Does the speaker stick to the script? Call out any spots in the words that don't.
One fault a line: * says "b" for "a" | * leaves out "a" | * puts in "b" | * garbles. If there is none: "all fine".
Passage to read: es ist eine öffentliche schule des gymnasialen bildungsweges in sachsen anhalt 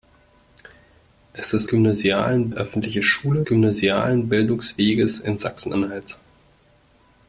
* says "gymnasialen" for "eine"
* leaves out "des"